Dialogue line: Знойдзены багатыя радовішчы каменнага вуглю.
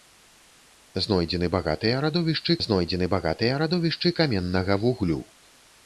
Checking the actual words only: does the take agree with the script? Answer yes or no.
no